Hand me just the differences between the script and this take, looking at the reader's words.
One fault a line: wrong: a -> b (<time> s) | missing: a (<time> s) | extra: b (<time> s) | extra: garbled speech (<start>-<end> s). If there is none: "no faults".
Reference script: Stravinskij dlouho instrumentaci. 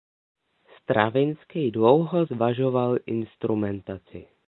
extra: zvažoval (2.2 s)